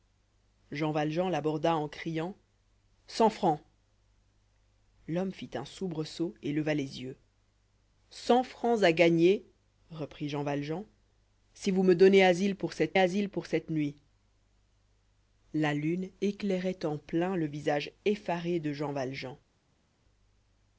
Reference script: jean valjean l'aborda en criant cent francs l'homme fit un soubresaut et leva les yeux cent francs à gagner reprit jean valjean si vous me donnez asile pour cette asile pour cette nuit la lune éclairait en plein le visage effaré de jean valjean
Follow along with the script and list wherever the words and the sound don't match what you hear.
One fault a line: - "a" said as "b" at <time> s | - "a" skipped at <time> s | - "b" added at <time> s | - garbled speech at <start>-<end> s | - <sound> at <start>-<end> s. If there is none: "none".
none